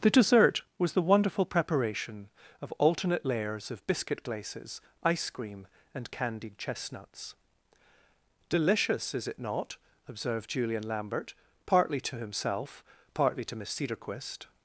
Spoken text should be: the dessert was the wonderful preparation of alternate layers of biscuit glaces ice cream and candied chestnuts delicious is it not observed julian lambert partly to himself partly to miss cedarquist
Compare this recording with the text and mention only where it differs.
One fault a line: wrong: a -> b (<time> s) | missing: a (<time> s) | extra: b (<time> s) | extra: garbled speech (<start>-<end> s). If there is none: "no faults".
no faults